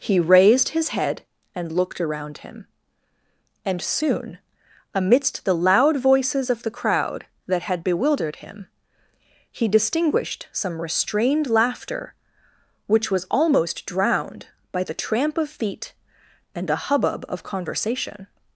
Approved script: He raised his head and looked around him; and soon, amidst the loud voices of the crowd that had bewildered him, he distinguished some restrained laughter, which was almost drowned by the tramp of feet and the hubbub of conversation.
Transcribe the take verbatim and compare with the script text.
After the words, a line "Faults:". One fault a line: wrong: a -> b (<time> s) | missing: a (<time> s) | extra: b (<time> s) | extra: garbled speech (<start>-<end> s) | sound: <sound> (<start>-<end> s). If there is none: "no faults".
He raised his head and looked around him; and soon, amidst the loud voices of the crowd that had bewildered him, he distinguished some restrained laughter, which was almost drowned by the tramp of feet and a hubbub of conversation.
Faults:
wrong: the -> a (16.7 s)